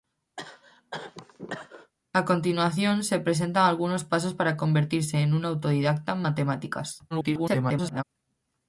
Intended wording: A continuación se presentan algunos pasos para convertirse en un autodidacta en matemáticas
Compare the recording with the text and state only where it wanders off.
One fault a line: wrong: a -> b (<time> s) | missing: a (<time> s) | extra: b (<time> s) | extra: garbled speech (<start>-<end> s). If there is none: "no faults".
extra: garbled speech (7.1-8.0 s)